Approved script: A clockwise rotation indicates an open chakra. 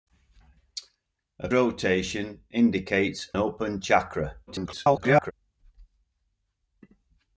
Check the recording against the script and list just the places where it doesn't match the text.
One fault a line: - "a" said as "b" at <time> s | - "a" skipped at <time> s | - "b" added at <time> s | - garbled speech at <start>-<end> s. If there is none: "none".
- "clockwise" skipped at 1.5 s
- "an" skipped at 3.3 s
- garbled speech at 4.5-5.3 s